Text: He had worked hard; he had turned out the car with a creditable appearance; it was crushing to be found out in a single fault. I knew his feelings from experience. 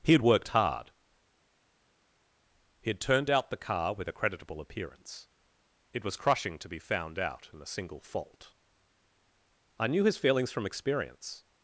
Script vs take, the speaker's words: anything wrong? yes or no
no